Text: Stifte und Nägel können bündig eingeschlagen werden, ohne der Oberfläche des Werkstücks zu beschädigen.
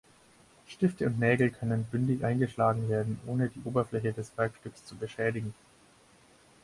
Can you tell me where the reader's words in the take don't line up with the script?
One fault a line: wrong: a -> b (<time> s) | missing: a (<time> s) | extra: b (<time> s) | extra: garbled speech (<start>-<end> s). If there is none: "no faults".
wrong: der -> die (3.5 s)